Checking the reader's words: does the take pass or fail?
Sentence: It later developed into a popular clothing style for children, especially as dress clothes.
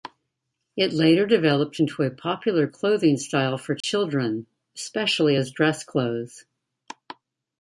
pass